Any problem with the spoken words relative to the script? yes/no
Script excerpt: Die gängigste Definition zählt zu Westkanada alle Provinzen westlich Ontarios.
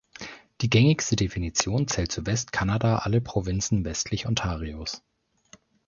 no